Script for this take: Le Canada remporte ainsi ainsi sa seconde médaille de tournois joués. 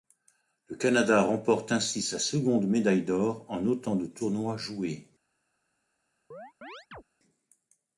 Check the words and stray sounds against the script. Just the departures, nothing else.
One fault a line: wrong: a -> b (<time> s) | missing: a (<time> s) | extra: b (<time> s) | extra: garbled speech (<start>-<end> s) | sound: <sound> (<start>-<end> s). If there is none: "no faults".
missing: ainsi (2.0 s)
extra: d'or en autant (3.0 s)
sound: chirp (6.3-7.0 s)